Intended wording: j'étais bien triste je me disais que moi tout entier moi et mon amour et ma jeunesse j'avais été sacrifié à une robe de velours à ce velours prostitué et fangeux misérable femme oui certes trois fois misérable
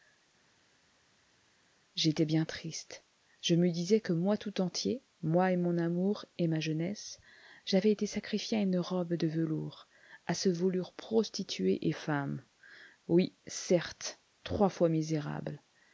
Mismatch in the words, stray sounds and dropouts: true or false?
true